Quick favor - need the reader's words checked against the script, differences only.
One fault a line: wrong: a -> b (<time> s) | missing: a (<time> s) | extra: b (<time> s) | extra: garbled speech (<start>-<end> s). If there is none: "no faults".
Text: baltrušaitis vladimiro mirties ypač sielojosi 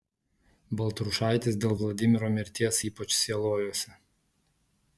extra: dėl (1.6 s)